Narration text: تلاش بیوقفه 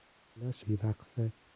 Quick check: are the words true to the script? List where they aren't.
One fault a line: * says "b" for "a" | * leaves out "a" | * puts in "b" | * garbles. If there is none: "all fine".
all fine